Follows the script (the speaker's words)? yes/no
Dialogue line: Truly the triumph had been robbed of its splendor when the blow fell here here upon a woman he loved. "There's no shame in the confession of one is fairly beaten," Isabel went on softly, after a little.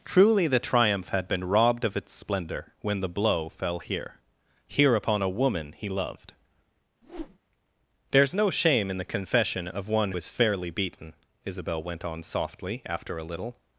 yes